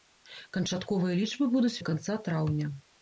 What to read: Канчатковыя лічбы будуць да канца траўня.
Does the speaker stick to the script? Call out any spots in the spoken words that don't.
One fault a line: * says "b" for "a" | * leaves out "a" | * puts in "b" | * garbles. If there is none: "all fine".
all fine